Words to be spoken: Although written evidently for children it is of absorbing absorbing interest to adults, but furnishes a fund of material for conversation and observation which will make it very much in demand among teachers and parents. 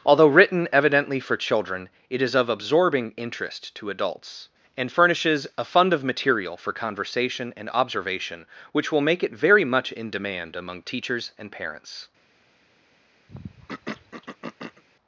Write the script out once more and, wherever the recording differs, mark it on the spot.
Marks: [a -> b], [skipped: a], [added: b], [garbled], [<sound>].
Although written evidently for children it is of absorbing [skipped: absorbing] interest to adults, [but -> and] furnishes a fund of material for conversation and observation which will make it very much in demand among teachers and parents. [throat clearing]